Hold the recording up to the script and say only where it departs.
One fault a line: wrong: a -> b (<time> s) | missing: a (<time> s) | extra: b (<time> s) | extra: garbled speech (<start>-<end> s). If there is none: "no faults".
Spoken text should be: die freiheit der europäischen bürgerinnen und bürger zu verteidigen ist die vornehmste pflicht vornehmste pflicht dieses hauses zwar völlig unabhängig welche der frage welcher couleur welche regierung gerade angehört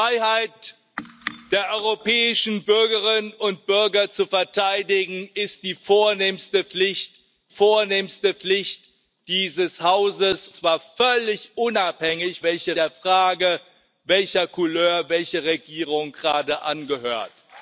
no faults